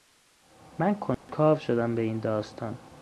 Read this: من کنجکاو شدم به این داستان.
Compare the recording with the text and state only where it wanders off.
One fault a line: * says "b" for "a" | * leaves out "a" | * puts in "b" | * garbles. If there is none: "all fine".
all fine